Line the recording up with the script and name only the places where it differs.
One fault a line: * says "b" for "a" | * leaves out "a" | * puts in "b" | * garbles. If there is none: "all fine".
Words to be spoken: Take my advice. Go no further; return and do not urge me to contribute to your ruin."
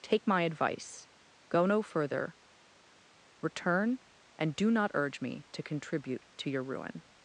all fine